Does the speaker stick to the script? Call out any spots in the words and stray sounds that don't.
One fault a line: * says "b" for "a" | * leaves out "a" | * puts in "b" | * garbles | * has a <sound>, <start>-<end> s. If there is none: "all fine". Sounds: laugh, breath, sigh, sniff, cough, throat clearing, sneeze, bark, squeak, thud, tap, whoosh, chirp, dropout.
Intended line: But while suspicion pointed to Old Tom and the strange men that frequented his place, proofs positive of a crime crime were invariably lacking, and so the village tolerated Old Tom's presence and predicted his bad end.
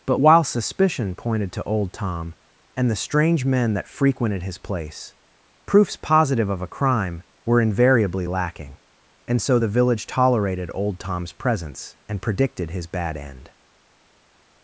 * leaves out "crime"